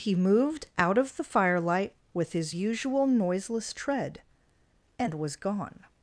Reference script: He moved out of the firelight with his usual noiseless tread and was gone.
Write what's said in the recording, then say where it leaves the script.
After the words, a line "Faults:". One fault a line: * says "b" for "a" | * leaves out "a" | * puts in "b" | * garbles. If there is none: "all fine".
He moved out of the firelight with his usual noiseless tread and was gone.
Faults:
all fine